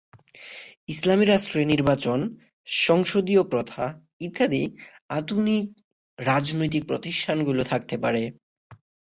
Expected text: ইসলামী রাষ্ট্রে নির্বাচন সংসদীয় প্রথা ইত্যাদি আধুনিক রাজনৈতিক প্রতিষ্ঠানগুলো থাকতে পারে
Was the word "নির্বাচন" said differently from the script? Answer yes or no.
no